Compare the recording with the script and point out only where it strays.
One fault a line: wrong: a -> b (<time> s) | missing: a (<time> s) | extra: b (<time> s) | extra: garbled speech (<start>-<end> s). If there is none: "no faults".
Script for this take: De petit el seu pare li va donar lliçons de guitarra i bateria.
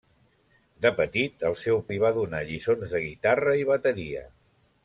missing: pare (1.8 s)